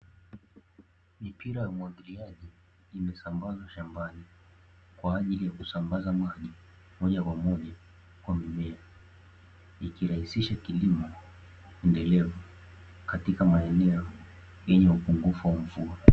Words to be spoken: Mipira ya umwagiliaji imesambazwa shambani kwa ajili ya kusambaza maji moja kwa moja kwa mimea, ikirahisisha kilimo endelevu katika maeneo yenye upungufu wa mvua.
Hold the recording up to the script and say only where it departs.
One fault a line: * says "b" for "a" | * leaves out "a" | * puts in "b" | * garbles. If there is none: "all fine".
all fine